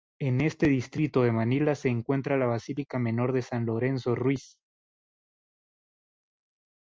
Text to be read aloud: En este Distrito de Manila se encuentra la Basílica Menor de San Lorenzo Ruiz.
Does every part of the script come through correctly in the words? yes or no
yes